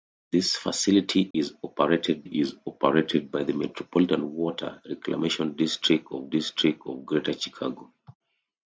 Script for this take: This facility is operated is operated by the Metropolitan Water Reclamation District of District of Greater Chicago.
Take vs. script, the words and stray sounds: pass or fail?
fail